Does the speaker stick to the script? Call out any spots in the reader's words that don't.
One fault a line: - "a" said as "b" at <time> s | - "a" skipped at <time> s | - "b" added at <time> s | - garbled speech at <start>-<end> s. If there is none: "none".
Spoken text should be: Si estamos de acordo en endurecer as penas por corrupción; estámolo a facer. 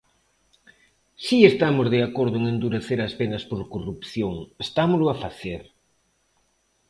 none